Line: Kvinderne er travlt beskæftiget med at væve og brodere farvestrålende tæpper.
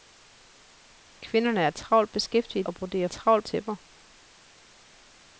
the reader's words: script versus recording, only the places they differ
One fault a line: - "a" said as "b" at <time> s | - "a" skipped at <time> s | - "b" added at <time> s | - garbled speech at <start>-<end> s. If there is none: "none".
- "med at væve" skipped at 2.7 s
- "farvestrålende" said as "travlt" at 3.1 s